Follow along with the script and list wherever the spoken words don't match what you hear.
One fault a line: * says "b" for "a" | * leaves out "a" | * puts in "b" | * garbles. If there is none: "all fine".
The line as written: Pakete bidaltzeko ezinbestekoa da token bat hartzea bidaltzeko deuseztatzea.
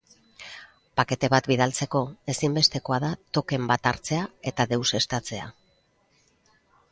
* puts in "bat"
* says "eta" for "bidaltzeko"